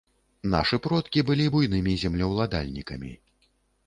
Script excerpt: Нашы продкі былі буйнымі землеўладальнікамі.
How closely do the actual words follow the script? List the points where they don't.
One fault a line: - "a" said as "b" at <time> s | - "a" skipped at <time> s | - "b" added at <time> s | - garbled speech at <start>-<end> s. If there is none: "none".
none